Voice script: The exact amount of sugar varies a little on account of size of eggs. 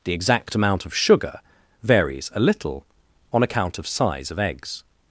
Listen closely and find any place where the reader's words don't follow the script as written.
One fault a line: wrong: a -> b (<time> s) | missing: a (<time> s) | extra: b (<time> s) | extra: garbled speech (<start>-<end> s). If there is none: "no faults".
no faults